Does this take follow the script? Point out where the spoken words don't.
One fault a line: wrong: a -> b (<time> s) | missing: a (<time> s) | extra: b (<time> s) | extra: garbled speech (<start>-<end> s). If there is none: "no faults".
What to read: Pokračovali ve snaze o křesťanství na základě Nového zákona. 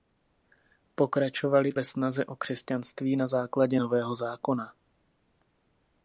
no faults